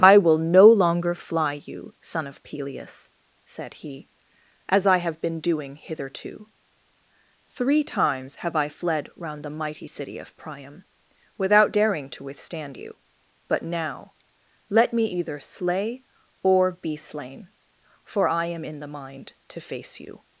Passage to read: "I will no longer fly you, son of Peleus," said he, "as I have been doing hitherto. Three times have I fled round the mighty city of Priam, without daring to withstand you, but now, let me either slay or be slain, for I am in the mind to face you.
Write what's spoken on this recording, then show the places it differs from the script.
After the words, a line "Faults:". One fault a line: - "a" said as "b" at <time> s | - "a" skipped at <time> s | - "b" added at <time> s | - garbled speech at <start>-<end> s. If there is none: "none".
"I will no longer fly you, son of Peleus," said he, "as I have been doing hitherto. Three times have I fled round the mighty city of Priam, without daring to withstand you, but now, let me either slay or be slain, for I am in the mind to face you.
Faults:
none